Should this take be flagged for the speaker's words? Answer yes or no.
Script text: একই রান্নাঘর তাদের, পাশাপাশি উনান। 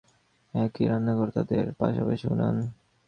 no